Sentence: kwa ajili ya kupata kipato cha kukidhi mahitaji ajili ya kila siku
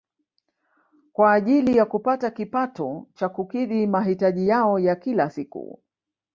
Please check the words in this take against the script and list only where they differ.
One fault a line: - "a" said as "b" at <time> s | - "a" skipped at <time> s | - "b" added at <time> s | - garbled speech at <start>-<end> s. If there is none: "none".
- "ajili" said as "yao" at 4.5 s